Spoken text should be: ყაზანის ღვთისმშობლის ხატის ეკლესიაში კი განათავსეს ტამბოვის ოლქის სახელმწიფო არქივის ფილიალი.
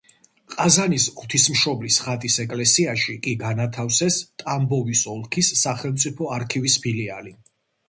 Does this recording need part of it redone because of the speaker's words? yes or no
no